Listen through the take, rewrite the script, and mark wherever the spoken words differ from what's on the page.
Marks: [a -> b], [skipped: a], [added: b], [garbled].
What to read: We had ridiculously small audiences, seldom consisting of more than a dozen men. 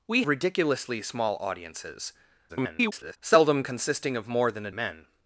We [skipped: had] ridiculously small audiences, [garbled] seldom consisting of more than a [skipped: dozen] men.